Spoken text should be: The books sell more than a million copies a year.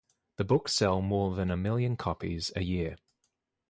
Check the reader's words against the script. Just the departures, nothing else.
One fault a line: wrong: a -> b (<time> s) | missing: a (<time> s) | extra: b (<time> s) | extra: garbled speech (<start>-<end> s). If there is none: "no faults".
no faults